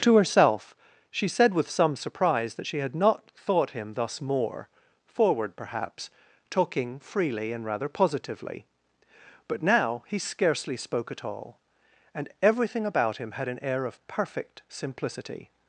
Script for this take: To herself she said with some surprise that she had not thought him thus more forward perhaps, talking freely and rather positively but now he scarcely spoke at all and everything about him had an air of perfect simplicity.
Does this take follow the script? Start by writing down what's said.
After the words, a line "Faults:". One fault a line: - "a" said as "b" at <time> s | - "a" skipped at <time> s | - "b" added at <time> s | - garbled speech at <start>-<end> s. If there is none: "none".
To herself she said with some surprise that she had not thought him thus more forward perhaps, talking freely and rather positively but now he scarcely spoke at all and everything about him had an air of perfect simplicity.
Faults:
none